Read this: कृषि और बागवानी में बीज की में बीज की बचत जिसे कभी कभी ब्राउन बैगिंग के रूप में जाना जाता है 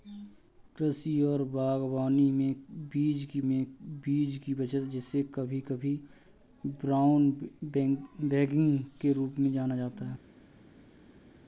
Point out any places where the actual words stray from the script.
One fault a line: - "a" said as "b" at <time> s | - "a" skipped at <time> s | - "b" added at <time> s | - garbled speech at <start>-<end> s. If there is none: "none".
none